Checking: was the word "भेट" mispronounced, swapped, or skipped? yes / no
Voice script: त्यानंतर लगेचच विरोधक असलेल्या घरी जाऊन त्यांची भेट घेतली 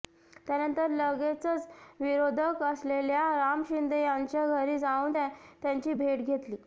no